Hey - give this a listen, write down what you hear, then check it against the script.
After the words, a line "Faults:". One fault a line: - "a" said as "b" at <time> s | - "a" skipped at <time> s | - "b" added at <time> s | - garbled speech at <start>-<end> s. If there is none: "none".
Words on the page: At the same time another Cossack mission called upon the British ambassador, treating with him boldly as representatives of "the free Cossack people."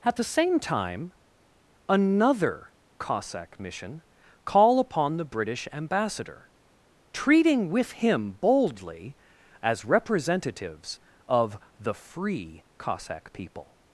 At the same time another Cossack mission call upon the British ambassador, treating with him boldly as representatives of "the free Cossack people."
Faults:
- "called" said as "call" at 4.5 s